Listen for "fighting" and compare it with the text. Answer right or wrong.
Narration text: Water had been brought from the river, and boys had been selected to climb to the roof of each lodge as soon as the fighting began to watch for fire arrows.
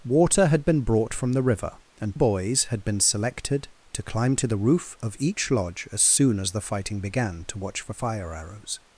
right